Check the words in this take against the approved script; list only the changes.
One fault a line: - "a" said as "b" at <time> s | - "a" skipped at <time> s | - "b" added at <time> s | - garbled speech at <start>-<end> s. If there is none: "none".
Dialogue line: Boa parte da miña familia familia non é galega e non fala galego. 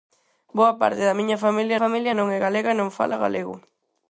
none